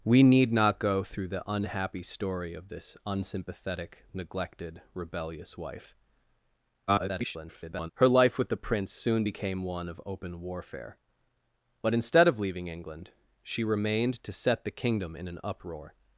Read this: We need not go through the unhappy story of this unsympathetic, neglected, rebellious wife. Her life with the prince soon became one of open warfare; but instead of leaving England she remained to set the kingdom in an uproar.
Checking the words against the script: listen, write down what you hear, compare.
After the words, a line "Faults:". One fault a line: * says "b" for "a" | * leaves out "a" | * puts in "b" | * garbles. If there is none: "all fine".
We need not go through the unhappy story of this unsympathetic, neglected, rebellious wife. [garbled] Her life with the prince soon became one of open warfare; but instead of leaving England she remained to set the kingdom in an uproar.
Faults:
* garbles